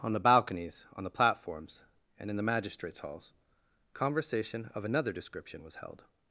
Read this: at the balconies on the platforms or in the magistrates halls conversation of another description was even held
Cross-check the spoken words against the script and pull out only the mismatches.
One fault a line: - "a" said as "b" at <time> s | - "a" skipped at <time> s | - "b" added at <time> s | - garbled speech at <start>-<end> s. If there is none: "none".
- "at" said as "on" at 0.0 s
- "or" said as "and" at 2.2 s
- "even" skipped at 5.8 s